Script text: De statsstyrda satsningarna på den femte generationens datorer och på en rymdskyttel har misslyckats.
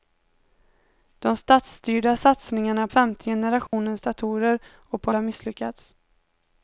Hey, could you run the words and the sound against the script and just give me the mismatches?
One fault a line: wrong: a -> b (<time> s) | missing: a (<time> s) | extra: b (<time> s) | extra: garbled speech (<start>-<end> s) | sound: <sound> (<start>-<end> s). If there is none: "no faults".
missing: på den (2.9 s)
sound: dropout (3.7-3.7 s)
missing: en rymdskyttel (5.1 s)